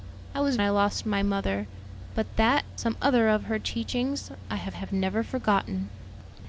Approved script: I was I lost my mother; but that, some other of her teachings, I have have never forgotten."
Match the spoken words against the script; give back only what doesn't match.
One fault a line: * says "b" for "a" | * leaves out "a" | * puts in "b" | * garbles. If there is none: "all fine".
all fine